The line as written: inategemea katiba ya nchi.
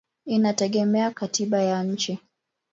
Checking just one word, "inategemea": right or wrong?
right